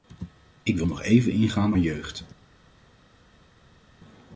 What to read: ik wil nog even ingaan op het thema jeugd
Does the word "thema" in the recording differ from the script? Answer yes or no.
yes